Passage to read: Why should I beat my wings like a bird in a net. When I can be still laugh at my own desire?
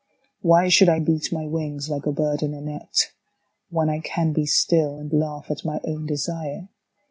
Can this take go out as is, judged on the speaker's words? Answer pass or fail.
fail